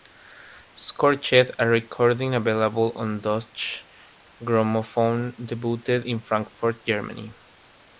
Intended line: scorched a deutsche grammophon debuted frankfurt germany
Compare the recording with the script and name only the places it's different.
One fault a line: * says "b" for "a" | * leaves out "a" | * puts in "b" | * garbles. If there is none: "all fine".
* puts in "recording available on"
* puts in "in"